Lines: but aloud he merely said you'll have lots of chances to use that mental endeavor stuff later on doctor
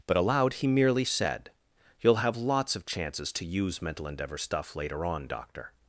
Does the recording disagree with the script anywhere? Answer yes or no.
yes